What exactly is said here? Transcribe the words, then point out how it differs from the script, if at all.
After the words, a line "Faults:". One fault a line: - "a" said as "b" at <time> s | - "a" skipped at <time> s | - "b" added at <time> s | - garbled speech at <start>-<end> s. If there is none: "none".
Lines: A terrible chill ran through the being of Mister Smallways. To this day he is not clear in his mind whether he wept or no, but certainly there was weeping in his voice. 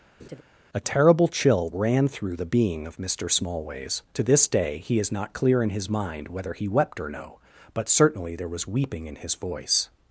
A terrible chill ran through the being of Mister Smallways. To this day he is not clear in his mind whether he wept or no, but certainly there was weeping in his voice.
Faults:
none